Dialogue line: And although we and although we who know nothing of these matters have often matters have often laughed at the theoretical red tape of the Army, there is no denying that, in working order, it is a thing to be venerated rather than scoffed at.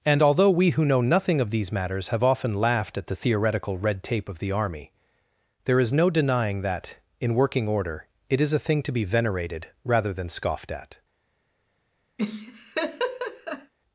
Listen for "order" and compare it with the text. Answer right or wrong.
right